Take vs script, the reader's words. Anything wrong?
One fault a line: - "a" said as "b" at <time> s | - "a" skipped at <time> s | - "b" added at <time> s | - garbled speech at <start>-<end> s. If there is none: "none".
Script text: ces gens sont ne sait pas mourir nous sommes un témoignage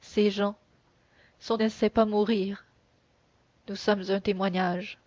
none